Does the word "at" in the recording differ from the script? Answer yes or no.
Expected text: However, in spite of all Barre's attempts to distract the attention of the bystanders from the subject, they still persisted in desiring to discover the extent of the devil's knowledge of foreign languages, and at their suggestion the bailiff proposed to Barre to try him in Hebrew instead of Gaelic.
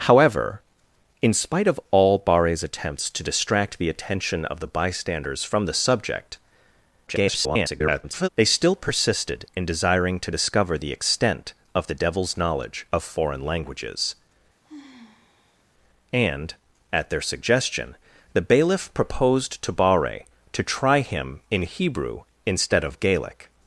no